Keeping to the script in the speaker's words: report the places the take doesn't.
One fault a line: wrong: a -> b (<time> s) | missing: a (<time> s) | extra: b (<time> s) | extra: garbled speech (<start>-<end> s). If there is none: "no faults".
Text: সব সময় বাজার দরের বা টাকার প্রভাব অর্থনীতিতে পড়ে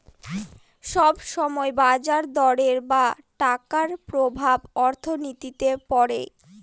no faults